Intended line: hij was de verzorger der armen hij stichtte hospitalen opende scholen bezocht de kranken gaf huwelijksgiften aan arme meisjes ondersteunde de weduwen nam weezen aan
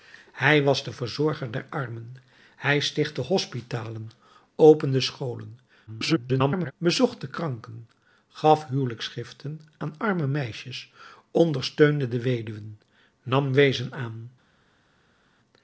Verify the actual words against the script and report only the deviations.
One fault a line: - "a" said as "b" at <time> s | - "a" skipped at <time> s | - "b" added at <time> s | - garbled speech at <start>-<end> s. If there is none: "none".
- garbled speech at 5.9-6.7 s